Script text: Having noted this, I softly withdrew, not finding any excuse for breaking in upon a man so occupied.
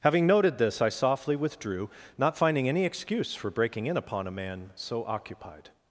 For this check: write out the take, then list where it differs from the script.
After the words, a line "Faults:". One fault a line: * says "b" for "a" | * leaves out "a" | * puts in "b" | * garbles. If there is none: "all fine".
Having noted this, I softly withdrew, not finding any excuse for breaking in upon a man so occupied.
Faults:
all fine